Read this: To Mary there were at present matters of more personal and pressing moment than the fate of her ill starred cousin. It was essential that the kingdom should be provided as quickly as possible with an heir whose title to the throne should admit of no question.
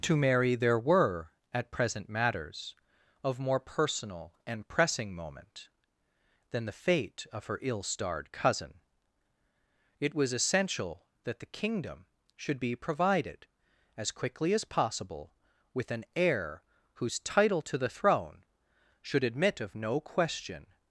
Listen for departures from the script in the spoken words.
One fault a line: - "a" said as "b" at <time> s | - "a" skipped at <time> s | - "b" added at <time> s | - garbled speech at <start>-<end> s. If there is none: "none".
none